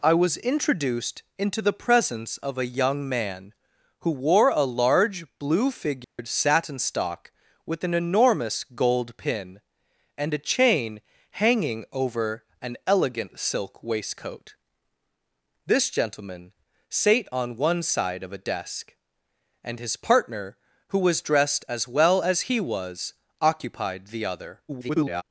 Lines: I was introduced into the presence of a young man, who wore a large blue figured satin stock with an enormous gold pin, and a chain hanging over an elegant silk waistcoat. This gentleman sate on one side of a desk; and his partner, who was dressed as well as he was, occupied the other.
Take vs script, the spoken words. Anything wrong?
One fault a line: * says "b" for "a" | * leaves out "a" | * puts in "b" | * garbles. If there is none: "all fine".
* garbles